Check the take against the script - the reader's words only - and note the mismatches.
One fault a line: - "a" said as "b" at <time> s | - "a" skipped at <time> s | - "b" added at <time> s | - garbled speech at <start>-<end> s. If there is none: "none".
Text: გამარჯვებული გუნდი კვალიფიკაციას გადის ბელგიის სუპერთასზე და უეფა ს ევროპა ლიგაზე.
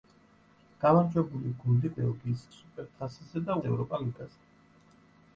- "კვალიფიკაციას გადის" skipped at 1.9 s
- "უეფა" skipped at 3.6 s